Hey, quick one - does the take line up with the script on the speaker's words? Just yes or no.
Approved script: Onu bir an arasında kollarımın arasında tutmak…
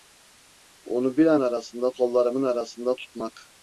yes